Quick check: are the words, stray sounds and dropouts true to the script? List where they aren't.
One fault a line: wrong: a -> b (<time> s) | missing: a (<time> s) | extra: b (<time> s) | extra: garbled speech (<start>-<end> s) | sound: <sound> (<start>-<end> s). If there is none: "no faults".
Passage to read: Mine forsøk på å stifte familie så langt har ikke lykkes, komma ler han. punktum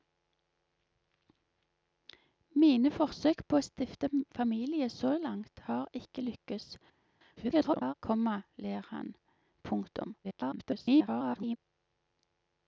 extra: garbled speech (7.4-7.9 s)
extra: garbled speech (10.2-11.6 s)